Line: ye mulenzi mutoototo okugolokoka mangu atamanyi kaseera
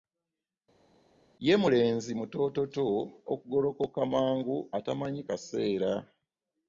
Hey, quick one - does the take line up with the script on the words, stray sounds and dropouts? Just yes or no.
yes